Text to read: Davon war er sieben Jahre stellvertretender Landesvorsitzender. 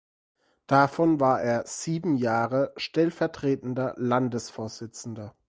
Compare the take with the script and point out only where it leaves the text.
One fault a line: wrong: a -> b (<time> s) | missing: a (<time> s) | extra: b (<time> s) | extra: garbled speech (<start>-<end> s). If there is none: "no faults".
no faults